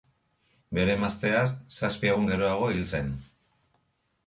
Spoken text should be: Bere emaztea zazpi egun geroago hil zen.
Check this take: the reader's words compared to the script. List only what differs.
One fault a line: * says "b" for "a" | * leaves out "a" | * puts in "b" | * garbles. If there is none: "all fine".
all fine